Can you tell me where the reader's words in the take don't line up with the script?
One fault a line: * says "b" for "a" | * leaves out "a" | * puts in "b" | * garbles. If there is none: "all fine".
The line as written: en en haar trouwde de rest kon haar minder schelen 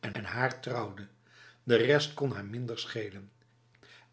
all fine